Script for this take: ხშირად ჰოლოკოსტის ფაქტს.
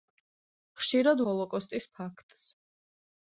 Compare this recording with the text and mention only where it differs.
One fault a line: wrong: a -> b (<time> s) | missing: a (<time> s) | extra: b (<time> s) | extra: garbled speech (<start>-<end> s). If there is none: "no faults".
no faults